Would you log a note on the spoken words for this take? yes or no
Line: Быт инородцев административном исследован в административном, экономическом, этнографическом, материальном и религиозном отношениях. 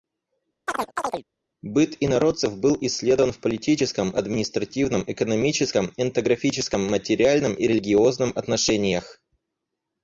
yes